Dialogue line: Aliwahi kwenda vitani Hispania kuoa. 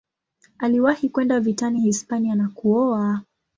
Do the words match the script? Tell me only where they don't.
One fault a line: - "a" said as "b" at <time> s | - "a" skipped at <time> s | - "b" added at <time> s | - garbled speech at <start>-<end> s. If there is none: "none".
- "na" added at 2.4 s